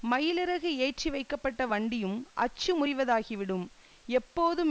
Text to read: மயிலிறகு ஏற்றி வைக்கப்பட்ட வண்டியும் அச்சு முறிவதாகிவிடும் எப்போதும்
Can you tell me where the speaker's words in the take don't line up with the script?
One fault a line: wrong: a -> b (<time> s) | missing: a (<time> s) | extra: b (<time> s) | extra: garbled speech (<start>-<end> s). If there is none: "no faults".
no faults